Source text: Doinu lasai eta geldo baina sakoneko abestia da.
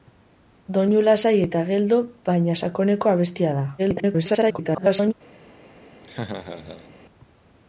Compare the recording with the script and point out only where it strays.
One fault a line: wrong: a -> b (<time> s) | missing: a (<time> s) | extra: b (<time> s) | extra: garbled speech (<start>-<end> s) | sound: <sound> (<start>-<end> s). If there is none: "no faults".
extra: garbled speech (3.8-5.1 s)
sound: laugh (6.0-6.9 s)